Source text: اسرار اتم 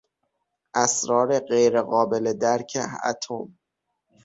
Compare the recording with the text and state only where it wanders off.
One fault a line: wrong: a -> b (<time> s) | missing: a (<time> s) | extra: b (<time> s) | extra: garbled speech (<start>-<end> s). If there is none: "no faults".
extra: غیرقابل درک (1.4 s)